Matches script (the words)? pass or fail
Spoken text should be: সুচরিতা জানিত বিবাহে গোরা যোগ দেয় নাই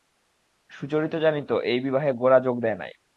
fail